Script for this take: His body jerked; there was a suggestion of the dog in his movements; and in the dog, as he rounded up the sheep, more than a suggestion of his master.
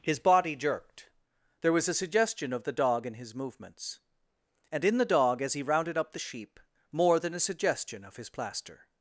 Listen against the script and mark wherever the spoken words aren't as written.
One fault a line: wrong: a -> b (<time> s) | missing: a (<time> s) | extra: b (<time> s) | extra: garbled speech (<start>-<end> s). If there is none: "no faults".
wrong: master -> plaster (8.3 s)